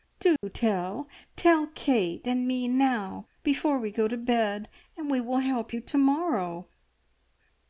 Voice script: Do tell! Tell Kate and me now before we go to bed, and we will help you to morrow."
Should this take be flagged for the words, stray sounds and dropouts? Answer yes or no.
yes